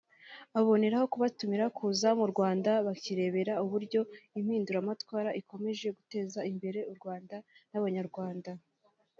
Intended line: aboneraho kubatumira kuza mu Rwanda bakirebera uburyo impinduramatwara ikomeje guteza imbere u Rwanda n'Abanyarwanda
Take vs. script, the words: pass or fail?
pass